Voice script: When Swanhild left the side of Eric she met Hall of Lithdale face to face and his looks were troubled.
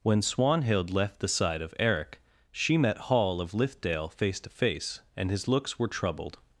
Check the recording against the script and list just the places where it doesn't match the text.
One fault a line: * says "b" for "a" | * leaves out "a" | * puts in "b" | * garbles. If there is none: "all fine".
all fine